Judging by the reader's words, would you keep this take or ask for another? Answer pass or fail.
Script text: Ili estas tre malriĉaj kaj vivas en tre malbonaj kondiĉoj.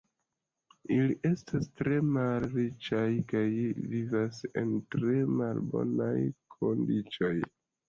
pass